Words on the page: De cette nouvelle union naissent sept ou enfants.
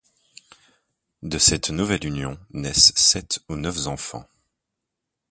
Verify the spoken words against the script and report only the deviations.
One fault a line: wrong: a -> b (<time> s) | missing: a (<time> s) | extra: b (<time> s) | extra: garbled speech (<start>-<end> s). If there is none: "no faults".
extra: neuf (3.6 s)